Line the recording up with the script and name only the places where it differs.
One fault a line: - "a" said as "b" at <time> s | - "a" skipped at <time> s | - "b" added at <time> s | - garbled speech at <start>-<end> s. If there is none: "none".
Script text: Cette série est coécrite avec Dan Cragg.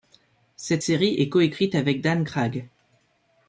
none